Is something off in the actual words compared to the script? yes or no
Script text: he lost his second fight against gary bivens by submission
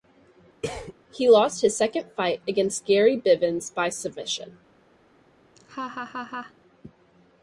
no